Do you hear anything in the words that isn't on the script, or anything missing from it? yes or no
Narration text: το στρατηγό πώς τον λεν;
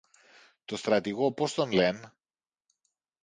no